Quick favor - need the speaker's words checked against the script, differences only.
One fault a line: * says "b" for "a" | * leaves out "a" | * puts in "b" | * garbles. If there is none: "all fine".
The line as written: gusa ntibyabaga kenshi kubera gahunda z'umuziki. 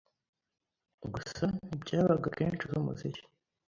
* leaves out "kubera gahunda"